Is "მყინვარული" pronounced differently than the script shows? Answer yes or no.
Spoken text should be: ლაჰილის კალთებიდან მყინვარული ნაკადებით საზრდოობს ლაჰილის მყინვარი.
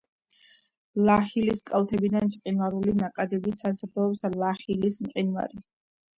no